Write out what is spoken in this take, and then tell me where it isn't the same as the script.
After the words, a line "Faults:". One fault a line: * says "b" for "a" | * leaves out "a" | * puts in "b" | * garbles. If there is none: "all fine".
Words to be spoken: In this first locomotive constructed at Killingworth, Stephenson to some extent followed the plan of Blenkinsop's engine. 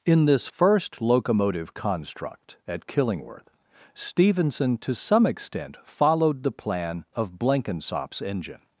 In this first locomotive construct at Killingworth, Stephenson to some extent followed the plan of Blenkinsop's engine.
Faults:
* says "construct" for "constructed"